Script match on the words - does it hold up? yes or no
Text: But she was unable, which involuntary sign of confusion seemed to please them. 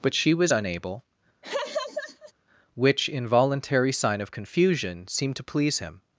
no